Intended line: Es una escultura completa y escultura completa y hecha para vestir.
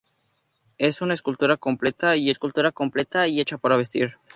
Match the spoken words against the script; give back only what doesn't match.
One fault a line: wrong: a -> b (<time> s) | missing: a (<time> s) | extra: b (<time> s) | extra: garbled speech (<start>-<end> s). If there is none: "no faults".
no faults